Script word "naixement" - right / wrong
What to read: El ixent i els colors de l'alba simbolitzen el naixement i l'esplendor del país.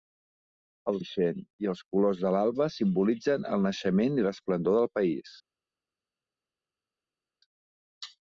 right